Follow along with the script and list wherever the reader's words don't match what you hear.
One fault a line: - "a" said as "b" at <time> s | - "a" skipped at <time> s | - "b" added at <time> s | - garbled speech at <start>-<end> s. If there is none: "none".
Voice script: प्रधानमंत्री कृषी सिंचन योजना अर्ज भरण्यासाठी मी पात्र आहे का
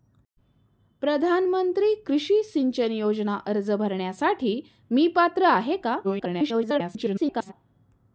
- garbled speech at 6.0-7.5 s